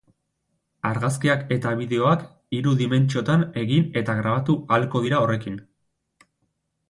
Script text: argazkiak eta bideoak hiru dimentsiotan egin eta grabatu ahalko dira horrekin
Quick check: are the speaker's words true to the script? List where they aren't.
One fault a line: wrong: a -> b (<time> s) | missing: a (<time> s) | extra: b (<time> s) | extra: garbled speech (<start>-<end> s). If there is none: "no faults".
no faults